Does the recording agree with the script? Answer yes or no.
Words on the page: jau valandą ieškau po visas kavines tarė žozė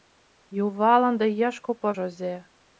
no